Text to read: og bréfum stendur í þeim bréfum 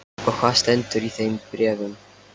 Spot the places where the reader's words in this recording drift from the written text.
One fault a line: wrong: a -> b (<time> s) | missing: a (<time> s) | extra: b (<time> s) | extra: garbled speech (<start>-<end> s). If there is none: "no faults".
wrong: bréfum -> hvað (0.4 s)